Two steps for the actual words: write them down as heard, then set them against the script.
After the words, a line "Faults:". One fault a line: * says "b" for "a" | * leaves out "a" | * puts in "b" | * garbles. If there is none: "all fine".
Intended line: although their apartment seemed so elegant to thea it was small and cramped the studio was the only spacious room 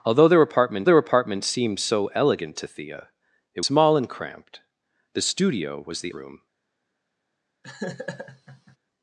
although their apartment their apartment seemed so elegant to thea it small and cramped the studio was the room
Faults:
* puts in "their apartment"
* leaves out "was"
* leaves out "only spacious"